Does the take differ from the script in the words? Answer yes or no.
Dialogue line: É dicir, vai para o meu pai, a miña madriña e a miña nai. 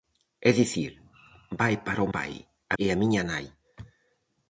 yes